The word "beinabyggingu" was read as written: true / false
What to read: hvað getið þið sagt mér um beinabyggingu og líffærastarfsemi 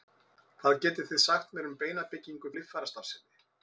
true